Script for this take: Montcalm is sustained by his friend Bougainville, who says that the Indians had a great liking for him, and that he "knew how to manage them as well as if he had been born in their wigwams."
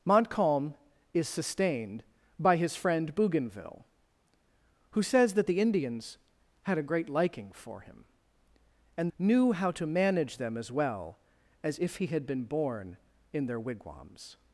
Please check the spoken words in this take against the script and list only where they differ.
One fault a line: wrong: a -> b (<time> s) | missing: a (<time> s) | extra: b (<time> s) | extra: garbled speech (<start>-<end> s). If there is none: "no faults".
missing: that he (9.1 s)